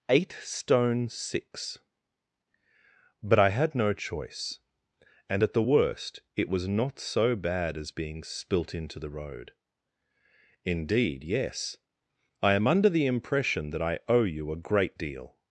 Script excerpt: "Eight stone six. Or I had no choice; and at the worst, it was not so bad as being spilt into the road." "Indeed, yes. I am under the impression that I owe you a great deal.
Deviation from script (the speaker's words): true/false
true